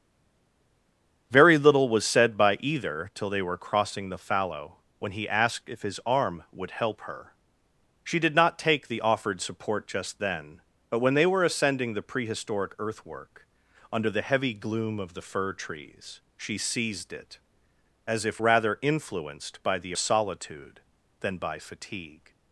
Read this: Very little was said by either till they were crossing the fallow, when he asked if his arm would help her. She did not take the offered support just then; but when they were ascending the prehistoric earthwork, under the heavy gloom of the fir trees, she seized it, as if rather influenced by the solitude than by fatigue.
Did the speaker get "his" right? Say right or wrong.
right